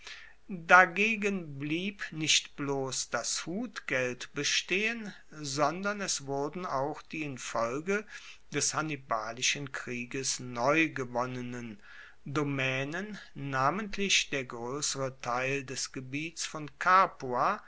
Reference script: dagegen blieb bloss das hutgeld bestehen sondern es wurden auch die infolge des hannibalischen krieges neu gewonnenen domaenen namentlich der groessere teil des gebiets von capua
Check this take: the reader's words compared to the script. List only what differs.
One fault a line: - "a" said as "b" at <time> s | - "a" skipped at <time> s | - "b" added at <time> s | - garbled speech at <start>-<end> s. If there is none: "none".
- "nicht" added at 2.1 s